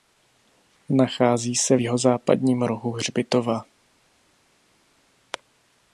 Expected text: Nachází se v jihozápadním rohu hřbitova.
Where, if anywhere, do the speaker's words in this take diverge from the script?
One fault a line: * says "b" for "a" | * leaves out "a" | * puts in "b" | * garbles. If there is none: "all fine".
all fine